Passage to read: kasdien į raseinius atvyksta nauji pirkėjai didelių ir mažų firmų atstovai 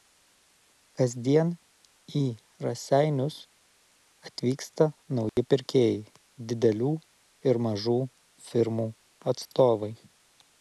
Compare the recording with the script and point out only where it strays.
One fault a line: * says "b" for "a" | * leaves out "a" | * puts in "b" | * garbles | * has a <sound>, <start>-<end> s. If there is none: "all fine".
* has a dropout, 5.3-5.4 s